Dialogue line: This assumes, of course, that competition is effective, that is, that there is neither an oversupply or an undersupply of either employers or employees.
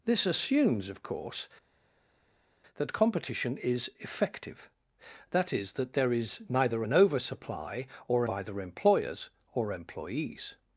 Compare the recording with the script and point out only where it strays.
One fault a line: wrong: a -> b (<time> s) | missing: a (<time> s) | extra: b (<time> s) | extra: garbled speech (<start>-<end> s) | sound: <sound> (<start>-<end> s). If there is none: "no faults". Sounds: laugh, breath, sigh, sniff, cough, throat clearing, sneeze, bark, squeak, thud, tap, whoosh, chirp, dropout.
missing: an undersupply of (8.2 s)